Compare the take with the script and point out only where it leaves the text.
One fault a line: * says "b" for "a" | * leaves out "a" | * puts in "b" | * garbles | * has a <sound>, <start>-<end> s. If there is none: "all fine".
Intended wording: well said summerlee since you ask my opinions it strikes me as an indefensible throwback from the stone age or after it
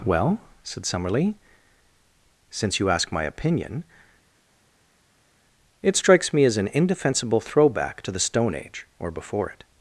* says "opinion" for "opinions"
* says "to" for "from"
* says "before" for "after"